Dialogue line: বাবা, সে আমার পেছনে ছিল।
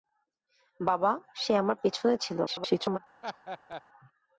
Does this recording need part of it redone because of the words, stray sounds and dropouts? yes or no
yes